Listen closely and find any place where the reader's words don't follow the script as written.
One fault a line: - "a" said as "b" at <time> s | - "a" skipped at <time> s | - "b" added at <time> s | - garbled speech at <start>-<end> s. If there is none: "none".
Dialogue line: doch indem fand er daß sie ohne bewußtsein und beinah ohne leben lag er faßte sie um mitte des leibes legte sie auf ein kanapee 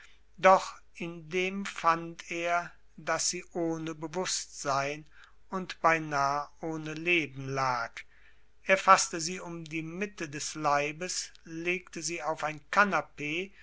- "die" added at 9.7 s